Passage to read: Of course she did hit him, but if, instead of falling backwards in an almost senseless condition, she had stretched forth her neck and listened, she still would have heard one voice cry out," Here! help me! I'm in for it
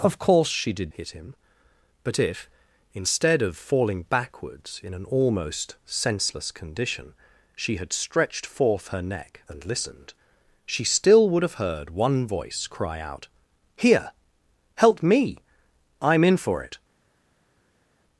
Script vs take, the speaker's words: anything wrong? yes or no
no